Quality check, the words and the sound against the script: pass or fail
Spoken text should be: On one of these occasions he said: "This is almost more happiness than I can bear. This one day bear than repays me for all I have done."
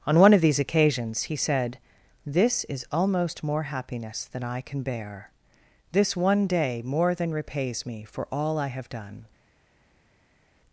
fail